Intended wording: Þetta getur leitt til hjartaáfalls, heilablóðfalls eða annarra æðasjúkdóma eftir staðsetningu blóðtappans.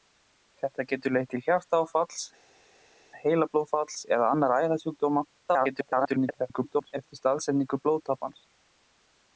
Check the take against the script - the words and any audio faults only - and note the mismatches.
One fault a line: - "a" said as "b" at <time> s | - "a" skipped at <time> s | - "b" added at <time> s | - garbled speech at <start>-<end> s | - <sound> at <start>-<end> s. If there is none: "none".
- garbled speech at 5.5-6.9 s